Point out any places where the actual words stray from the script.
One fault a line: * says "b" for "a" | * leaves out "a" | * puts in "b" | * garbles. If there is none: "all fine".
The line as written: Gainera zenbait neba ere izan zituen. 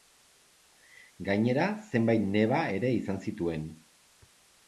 all fine